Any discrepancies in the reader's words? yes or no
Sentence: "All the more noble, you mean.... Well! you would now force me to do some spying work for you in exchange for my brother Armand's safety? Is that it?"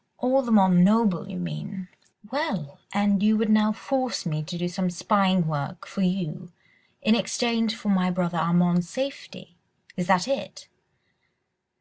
yes